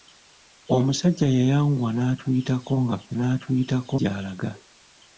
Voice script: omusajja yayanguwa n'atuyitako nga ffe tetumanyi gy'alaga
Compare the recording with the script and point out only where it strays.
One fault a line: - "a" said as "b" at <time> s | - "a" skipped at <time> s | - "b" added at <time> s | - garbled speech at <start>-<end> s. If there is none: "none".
- "tetumanyi" said as "n'atuyitako" at 3.2 s